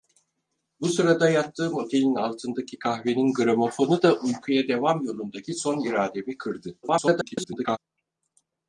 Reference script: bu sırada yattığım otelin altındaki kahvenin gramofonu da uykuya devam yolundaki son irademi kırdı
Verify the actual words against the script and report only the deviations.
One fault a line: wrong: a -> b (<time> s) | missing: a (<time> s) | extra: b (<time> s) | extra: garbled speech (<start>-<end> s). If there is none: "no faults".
extra: garbled speech (6.8-7.8 s)